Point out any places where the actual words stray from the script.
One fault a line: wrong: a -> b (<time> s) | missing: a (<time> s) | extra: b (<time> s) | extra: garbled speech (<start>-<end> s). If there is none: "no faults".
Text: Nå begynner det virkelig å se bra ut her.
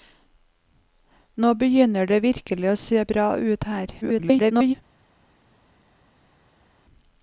extra: garbled speech (4.0-4.7 s)